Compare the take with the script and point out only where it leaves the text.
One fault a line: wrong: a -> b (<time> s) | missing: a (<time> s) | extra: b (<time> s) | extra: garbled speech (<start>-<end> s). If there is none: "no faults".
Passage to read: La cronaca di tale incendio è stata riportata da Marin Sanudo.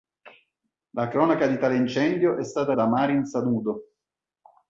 missing: riportata (2.7 s)